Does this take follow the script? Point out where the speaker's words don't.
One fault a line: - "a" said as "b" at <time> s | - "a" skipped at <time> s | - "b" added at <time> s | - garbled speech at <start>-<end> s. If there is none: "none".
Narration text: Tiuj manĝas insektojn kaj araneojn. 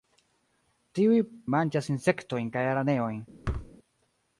none